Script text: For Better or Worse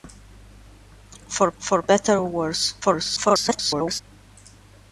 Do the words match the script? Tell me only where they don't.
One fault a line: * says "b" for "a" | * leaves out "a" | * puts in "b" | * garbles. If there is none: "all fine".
* puts in "for"
* garbles